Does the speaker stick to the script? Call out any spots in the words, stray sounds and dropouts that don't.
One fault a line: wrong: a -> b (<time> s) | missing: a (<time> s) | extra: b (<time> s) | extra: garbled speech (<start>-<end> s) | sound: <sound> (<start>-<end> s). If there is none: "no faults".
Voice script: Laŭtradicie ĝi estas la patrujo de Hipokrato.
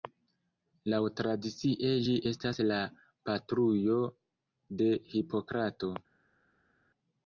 no faults